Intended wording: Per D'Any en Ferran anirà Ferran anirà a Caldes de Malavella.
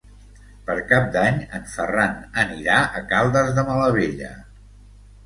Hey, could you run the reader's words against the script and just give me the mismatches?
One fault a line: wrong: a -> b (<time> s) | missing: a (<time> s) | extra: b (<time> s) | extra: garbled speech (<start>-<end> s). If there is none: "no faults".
extra: Cap (0.9 s)
missing: Ferran anirà (2.8 s)